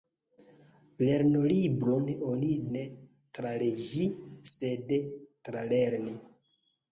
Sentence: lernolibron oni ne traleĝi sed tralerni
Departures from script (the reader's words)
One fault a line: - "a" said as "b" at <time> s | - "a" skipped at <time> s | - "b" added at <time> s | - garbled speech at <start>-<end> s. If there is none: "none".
none